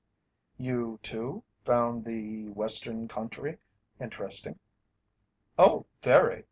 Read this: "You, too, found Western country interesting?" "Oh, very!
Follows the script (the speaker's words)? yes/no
no